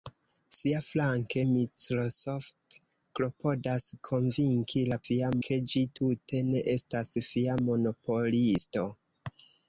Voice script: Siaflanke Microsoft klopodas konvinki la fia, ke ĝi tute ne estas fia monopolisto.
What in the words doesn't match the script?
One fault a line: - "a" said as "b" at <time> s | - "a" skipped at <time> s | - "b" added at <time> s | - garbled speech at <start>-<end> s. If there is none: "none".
none